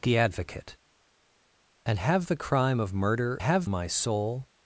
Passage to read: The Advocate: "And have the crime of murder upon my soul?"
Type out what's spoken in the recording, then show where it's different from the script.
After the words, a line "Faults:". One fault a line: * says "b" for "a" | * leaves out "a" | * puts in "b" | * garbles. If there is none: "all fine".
The Advocate: "And have the crime of murder have my soul?"
Faults:
* says "have" for "upon"